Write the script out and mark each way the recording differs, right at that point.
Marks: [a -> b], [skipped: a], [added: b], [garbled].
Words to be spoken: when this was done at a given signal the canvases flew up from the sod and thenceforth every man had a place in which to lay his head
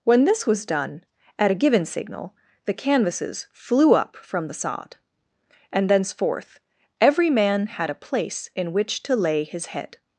when this was done at a given signal the canvases flew up from the sod and thenceforth every man had a place in which to lay his head